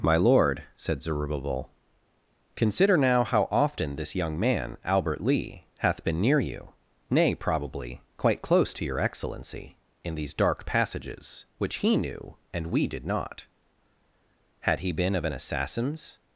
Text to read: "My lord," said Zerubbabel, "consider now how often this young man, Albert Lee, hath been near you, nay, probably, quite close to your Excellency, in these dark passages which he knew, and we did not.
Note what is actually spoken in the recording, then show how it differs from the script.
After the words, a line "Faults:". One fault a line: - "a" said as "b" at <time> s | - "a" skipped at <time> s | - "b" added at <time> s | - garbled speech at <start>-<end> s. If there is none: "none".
"My lord," said Zerubbabel, "consider now how often this young man, Albert Lee, hath been near you, nay, probably, quite close to your Excellency, in these dark passages which he knew, and we did not. Had he been of an assassin's
Faults:
- "Had he been of an assassin's" added at 14.6 s